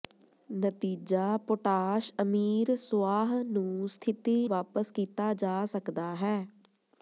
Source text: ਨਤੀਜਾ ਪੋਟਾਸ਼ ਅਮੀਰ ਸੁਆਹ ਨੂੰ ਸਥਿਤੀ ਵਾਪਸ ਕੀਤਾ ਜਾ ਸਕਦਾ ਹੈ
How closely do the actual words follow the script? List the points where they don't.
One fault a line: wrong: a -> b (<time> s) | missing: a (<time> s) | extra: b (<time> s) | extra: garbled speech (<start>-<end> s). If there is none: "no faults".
no faults